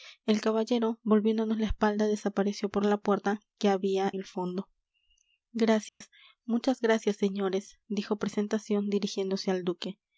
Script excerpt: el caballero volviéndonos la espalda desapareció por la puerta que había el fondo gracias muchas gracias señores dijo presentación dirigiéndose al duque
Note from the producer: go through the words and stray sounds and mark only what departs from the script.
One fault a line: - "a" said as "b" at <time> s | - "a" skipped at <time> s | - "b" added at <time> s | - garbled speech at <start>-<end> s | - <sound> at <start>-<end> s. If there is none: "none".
- dropout at 5.9-6.0 s